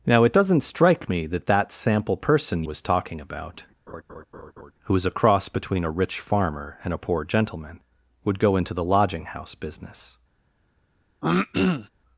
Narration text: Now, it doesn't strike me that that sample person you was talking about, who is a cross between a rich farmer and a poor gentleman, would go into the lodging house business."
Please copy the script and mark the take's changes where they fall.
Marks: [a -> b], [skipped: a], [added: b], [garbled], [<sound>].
Now, it doesn't strike me that that sample person [skipped: you] was talking about, [laugh] who is a cross between a rich farmer and a poor gentleman, would go into the lodging house business." [throat clearing]